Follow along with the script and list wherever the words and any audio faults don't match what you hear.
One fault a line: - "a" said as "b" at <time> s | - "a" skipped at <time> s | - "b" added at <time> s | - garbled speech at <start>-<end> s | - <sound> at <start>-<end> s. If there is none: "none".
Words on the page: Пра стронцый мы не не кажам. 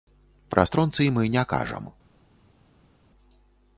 - "не" skipped at 1.4 s